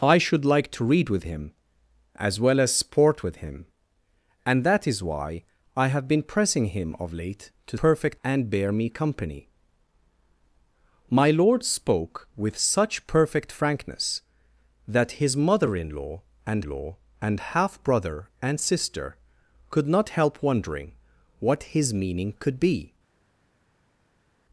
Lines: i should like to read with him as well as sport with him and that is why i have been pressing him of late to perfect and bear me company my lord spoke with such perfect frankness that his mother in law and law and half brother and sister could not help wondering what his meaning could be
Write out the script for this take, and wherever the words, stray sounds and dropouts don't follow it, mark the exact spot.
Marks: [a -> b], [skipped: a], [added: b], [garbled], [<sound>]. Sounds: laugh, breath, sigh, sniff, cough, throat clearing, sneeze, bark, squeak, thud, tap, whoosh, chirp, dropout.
i should like to read with him as well as sport with him and that is why i have been pressing him of late to perfect and bear me company my lord spoke with such perfect frankness that his mother in law and law and half brother and sister could not help wondering what his meaning could be